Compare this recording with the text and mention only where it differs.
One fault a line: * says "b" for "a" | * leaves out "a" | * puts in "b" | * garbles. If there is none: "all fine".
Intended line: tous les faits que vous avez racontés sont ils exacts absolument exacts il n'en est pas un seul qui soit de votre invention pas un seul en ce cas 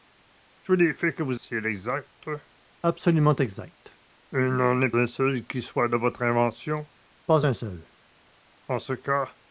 * leaves out "avez racontés sont"
* leaves out "pas"